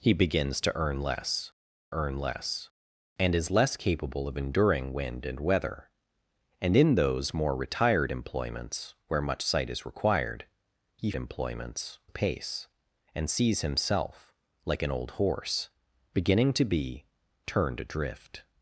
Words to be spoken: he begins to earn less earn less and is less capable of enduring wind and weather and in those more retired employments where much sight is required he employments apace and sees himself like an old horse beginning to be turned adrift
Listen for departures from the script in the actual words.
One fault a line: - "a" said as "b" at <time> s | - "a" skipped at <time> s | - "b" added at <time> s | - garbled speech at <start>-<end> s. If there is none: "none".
none